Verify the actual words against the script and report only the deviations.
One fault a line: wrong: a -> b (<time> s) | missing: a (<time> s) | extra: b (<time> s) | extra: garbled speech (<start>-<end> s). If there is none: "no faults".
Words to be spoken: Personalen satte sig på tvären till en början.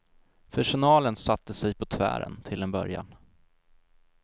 no faults